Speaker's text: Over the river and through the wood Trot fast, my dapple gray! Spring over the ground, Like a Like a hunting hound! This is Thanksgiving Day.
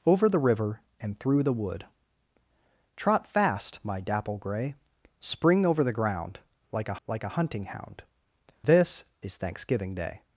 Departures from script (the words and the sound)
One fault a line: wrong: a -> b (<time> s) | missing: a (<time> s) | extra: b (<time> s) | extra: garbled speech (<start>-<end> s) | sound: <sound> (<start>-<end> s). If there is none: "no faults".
no faults